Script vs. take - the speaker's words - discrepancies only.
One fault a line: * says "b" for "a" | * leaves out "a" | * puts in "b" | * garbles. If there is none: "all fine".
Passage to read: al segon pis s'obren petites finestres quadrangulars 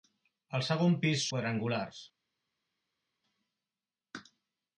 * leaves out "s'obren petites finestres"